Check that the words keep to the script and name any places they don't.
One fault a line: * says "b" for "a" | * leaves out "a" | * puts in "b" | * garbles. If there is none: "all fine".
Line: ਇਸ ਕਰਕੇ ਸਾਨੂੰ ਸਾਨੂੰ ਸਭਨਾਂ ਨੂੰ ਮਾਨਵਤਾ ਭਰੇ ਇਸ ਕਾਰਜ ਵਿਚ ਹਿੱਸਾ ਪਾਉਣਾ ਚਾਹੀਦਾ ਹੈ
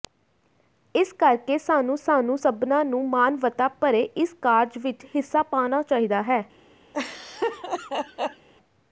all fine